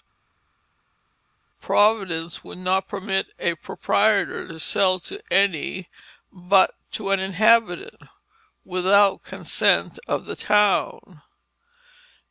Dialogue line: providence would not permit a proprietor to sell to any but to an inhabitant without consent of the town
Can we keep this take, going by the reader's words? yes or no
yes